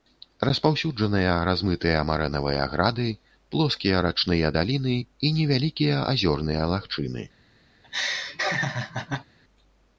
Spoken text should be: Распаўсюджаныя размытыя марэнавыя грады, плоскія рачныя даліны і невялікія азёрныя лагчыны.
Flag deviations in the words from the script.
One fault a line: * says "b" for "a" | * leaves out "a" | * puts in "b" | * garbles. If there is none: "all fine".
all fine